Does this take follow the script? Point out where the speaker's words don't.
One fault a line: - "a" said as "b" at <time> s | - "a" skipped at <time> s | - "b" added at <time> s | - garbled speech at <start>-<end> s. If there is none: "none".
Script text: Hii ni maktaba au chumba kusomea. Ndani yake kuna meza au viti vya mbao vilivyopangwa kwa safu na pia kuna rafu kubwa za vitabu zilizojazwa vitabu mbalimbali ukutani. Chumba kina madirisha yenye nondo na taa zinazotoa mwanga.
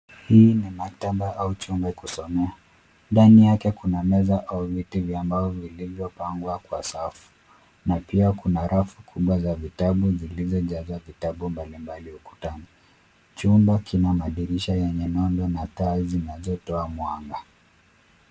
none